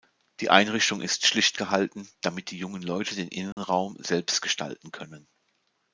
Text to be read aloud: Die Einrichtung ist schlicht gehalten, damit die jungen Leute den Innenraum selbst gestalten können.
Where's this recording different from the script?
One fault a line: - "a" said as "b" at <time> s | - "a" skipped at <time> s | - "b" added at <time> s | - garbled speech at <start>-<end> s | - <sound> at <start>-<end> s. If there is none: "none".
- dropout at 3.5-3.6 s